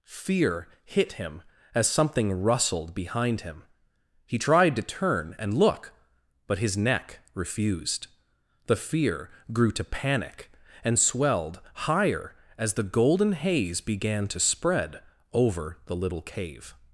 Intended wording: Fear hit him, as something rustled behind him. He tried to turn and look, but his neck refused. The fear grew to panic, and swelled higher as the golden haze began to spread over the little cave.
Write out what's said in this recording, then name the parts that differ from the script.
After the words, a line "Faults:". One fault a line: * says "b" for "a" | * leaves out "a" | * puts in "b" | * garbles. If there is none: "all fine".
Fear hit him, as something rustled behind him. He tried to turn and look, but his neck refused. The fear grew to panic, and swelled higher as the golden haze began to spread over the little cave.
Faults:
all fine